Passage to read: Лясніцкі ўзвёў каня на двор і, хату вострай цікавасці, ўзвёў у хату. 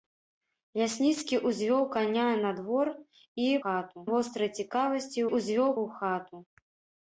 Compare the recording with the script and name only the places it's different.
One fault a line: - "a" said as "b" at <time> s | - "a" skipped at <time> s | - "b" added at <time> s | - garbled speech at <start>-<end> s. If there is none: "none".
none